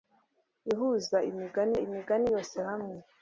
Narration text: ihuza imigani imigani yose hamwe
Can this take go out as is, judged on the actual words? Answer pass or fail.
pass